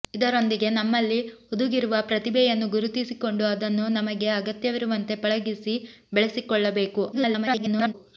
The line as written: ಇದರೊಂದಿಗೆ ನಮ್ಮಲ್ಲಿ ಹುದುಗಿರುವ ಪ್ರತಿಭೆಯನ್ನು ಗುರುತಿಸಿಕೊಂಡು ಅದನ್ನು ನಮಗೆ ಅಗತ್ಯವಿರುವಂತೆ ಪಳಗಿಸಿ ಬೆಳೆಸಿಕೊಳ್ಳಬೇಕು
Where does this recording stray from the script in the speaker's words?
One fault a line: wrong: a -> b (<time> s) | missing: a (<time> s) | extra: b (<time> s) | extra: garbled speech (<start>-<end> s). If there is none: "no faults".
extra: garbled speech (7.1-7.9 s)